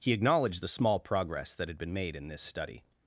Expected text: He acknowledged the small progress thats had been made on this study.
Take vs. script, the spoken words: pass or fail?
fail